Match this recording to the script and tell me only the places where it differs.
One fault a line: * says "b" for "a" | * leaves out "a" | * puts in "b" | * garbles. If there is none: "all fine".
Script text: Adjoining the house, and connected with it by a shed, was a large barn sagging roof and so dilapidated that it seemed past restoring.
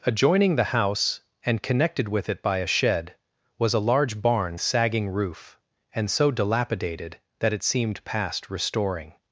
all fine